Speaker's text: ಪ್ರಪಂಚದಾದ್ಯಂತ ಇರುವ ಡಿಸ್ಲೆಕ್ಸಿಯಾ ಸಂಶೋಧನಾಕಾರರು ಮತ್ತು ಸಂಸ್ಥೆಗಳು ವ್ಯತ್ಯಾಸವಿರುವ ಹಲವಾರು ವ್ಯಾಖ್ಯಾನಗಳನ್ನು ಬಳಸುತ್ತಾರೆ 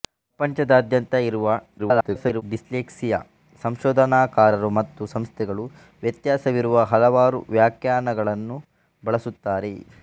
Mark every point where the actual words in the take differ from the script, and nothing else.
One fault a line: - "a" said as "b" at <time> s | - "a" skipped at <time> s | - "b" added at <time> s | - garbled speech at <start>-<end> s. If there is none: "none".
- garbled speech at 1.8-2.4 s